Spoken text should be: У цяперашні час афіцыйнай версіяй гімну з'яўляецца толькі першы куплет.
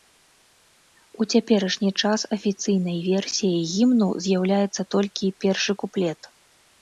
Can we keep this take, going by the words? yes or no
yes